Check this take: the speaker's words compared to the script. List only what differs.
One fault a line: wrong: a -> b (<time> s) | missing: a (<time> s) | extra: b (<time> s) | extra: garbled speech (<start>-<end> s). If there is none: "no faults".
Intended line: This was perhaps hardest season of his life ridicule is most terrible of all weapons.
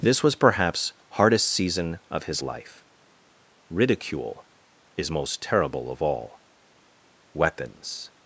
no faults